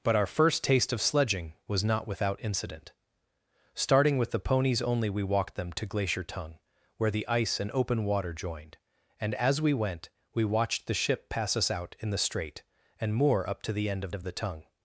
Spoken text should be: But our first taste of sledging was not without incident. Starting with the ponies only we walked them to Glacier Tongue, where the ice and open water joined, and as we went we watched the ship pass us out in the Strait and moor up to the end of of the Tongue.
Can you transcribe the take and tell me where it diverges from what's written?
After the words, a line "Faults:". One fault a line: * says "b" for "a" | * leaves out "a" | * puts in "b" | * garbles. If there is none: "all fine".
But our first taste of sledging was not without incident. Starting with the ponies only we walked them to Glacier Tongue, where the ice and open water joined, and as we went we watched the ship pass us out in the Strait and moor up to the end of of the Tongue.
Faults:
all fine